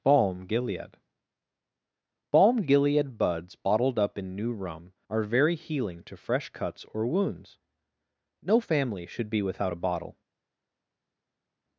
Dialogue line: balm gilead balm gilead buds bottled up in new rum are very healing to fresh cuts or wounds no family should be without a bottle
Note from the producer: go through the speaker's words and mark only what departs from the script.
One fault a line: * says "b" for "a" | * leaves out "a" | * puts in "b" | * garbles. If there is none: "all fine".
all fine